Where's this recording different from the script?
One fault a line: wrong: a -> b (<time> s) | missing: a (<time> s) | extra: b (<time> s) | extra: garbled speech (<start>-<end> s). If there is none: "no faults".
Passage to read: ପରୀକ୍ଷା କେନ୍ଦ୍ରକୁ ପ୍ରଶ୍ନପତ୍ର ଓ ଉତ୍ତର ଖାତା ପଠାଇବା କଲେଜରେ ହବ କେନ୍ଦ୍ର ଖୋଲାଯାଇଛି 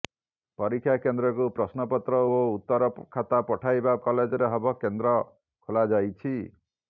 no faults